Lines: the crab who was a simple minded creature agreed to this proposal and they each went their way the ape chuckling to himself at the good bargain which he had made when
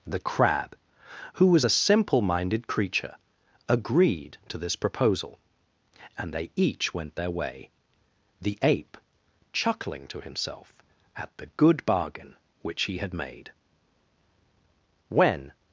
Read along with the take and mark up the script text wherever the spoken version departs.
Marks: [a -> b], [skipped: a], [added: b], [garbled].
the crab who was a simple minded creature agreed to this proposal and they each went their way the ape chuckling to himself at the good bargain which he had made when